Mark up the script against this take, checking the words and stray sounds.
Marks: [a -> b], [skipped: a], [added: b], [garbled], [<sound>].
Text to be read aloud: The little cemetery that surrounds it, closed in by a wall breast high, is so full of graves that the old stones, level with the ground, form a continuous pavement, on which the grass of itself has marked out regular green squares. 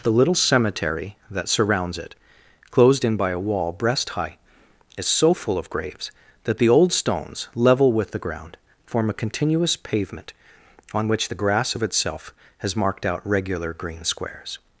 The little cemetery that surrounds it, closed in by a wall breast high, is so full of graves that the old stones, level with the ground, form a continuous pavement, on which the grass of itself has marked out regular green squares.